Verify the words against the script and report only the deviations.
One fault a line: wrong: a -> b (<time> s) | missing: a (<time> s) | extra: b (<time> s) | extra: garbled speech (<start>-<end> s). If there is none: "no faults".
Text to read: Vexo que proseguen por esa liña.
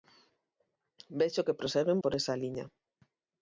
no faults